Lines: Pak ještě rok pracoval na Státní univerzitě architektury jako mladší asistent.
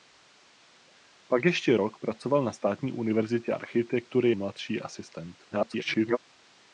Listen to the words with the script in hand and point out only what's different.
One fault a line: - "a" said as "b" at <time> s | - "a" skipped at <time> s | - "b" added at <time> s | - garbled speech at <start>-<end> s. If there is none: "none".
- "jako" skipped at 4.3 s
- garbled speech at 5.5-6.2 s